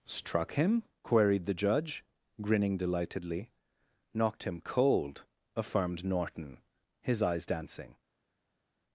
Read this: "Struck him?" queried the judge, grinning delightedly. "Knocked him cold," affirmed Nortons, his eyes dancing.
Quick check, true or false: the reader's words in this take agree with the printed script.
false